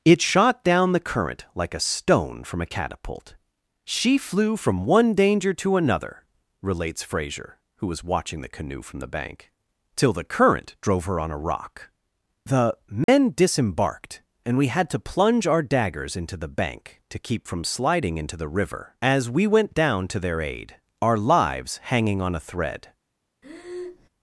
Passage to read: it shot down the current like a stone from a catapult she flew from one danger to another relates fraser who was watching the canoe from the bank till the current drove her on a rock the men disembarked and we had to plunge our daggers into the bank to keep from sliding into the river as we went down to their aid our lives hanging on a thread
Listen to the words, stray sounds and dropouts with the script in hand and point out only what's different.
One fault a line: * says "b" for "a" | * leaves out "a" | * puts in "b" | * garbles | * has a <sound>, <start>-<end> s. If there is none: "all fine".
* has a dropout, 13.0-13.1 s
* has a breath, 23.4-24.1 s